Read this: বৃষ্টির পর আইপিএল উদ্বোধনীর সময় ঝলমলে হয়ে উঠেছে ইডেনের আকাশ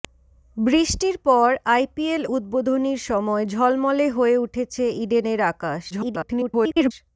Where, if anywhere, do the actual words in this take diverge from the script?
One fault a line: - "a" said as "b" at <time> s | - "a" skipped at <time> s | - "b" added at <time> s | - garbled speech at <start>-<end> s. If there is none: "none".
- garbled speech at 5.9-6.9 s